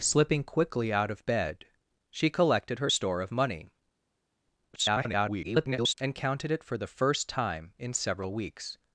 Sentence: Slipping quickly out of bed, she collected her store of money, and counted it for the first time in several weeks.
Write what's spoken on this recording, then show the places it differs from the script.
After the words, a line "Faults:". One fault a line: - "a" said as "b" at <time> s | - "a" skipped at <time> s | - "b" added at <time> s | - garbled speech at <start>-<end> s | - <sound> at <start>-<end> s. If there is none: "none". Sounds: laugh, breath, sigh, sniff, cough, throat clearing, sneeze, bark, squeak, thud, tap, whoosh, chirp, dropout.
Slipping quickly out of bed, she collected her store of money, [garbled] and counted it for the first time in several weeks.
Faults:
- garbled speech at 4.7-5.9 s